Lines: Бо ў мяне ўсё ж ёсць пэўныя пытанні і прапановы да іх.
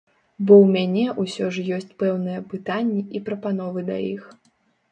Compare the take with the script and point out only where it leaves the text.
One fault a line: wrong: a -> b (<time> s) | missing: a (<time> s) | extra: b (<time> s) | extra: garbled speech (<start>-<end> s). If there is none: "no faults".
no faults